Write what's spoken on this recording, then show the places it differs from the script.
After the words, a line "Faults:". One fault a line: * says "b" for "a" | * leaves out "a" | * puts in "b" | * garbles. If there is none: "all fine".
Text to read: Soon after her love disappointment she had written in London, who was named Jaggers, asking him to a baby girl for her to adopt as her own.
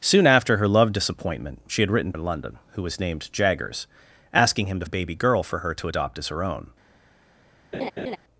Soon after her love disappointment she had written in London, who was named Jaggers, asking him to a baby girl for her to adopt as her own.
Faults:
all fine